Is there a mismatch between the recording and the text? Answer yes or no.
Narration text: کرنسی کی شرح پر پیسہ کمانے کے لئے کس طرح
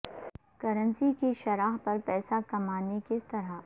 yes